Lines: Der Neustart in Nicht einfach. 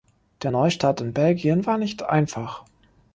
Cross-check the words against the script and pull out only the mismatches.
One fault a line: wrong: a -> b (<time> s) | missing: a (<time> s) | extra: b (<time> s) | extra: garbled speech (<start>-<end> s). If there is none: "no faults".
extra: Belgien war (1.1 s)